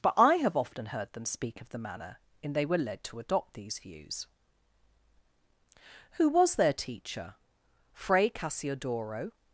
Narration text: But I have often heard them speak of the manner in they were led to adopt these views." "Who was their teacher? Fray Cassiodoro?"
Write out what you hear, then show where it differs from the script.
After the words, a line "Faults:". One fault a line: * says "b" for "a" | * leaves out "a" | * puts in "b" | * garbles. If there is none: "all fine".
But I have often heard them speak of the manner in they were led to adopt these views." "Who was their teacher? Fray Cassiodoro?"
Faults:
all fine